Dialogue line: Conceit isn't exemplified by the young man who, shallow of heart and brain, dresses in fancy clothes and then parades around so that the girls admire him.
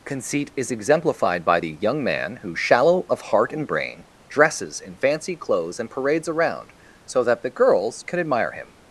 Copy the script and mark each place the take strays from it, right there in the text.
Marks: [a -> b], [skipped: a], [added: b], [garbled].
Conceit [isn't -> is] exemplified by the young man who, shallow of heart and brain, dresses in fancy clothes and [skipped: then] parades around so that the girls [added: can] admire him.